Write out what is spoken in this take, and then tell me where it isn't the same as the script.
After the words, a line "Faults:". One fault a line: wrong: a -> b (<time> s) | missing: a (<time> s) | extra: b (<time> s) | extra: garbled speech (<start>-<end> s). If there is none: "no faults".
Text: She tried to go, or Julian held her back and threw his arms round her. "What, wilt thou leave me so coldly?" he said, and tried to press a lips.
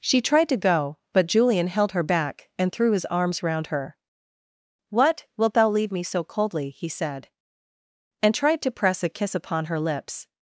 She tried to go, but Julian held her back and threw his arms round her. "What, wilt thou leave me so coldly?" he said, and tried to press a kiss upon her lips.
Faults:
wrong: or -> but (1.1 s)
extra: kiss upon her (9.1 s)